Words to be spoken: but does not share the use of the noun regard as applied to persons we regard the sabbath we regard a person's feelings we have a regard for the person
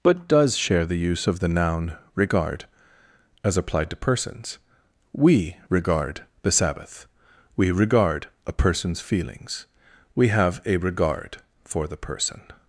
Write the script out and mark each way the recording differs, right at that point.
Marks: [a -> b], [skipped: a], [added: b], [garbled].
but does [skipped: not] share the use of the noun regard as applied to persons we regard the sabbath we regard a person's feelings we have a regard for the person